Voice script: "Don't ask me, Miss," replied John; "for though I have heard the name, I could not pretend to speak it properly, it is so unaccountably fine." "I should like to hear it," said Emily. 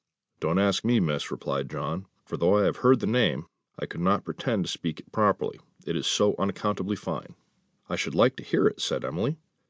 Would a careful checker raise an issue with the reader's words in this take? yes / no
no